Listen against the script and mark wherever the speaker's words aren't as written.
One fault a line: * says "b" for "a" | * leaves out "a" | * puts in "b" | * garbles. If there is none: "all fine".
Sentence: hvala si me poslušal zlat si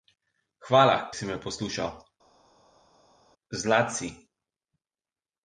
all fine